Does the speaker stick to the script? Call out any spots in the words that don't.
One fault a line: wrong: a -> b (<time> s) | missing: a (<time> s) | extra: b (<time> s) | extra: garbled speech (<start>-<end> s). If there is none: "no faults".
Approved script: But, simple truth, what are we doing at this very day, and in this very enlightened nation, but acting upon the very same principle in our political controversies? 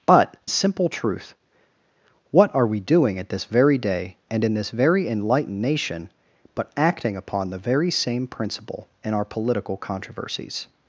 no faults